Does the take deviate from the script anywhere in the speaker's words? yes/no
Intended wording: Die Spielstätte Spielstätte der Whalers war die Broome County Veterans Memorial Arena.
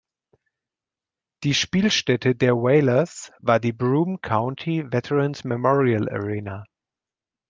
yes